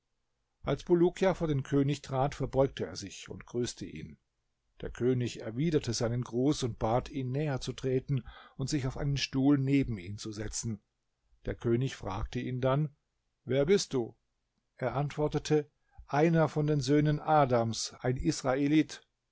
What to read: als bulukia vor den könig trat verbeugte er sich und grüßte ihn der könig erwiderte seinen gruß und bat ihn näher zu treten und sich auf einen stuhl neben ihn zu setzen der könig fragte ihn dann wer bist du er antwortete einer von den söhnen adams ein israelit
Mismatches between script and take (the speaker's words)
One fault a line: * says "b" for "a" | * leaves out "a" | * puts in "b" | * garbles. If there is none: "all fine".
all fine